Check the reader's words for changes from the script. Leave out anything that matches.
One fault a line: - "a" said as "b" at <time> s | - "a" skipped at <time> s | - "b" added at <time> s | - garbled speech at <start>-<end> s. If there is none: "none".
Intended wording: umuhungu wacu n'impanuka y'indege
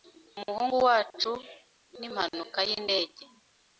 none